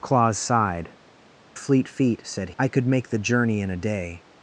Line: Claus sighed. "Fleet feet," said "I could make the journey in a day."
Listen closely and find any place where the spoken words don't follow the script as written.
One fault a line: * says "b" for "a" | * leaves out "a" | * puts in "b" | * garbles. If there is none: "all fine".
all fine